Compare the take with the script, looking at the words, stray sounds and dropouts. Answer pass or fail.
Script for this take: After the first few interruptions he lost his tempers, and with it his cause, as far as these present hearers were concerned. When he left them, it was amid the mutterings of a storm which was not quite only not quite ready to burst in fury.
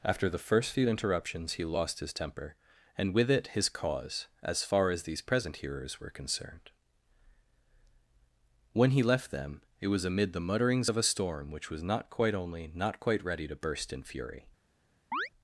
fail